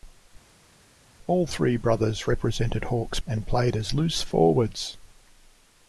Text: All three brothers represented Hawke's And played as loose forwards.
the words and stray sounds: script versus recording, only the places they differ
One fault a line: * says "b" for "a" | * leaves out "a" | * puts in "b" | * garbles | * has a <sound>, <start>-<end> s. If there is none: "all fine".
all fine